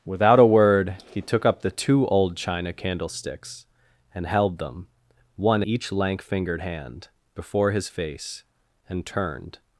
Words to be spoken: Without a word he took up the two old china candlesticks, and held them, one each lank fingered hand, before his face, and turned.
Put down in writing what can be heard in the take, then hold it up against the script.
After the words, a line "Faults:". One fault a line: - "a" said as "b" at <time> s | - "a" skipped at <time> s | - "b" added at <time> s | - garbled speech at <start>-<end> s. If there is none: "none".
Without a word he took up the two old china candlesticks, and held them, one each lank fingered hand, before his face, and turned.
Faults:
none